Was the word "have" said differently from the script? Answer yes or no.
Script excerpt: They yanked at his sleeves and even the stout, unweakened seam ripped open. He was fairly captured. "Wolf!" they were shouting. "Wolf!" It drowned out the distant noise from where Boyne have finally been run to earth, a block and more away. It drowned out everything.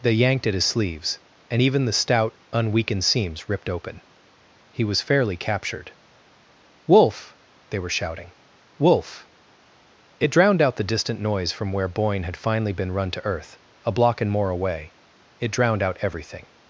yes